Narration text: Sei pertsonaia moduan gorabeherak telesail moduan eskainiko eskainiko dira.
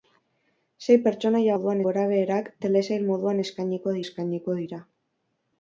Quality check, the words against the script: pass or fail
pass